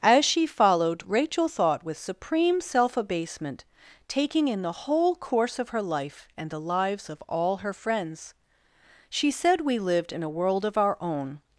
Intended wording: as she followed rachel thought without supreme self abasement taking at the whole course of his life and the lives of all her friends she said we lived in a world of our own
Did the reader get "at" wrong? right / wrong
wrong